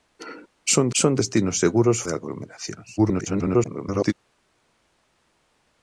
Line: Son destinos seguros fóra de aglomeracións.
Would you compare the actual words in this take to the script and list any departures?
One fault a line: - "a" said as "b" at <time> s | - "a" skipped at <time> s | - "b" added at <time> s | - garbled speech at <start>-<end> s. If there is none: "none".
- "son" added at 1.0 s
- "fóra" skipped at 2.0 s
- garbled speech at 3.0-4.1 s